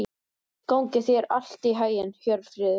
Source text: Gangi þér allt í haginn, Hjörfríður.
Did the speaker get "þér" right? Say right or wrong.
right